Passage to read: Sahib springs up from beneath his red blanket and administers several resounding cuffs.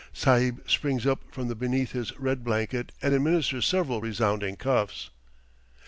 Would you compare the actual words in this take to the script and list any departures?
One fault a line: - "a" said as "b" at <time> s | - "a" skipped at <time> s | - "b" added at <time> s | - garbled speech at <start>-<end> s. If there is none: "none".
none